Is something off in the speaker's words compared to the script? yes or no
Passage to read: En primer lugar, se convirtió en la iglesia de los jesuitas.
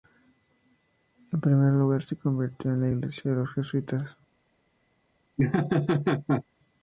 no